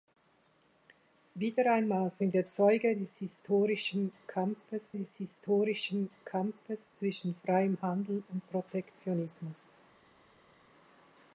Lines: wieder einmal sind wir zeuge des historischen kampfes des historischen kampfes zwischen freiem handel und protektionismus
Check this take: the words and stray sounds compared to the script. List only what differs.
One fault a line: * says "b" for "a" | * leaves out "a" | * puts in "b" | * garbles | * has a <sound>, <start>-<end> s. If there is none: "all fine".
all fine